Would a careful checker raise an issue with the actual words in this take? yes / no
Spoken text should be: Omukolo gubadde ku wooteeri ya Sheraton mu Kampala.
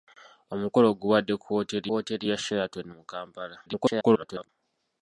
yes